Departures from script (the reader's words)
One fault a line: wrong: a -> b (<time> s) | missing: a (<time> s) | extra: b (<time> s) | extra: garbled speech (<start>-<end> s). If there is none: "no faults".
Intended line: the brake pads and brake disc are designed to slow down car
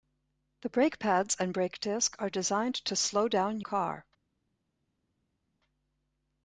no faults